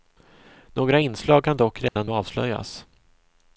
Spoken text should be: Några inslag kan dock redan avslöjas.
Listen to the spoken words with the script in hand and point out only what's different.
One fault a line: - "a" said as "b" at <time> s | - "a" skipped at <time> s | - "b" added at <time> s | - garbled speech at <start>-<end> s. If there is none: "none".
none